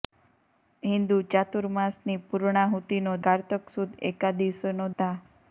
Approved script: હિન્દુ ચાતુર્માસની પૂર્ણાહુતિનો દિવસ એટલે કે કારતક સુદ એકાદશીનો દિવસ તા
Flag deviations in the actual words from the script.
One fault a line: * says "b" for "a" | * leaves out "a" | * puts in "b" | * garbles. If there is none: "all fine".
* leaves out "દિવસ એટલે કે"
* leaves out "દિવસ"